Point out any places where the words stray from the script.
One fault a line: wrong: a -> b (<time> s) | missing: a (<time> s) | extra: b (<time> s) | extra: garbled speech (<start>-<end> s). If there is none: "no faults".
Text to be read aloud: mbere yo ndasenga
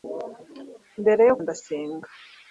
no faults